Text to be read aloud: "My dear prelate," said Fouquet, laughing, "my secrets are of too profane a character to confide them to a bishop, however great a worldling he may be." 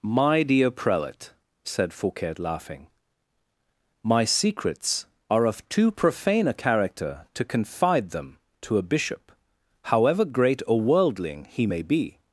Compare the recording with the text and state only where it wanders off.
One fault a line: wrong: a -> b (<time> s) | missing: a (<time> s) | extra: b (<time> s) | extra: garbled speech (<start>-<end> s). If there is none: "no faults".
no faults